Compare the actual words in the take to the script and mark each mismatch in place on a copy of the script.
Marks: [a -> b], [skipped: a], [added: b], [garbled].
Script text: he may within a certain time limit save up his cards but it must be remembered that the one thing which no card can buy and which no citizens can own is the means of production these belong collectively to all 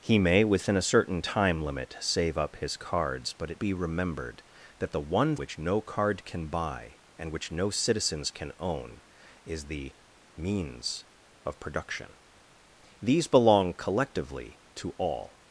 he may within a certain time limit save up his cards but it [skipped: must] be remembered that the one [skipped: thing] which no card can buy and which no citizens can own is the means of production these belong collectively to all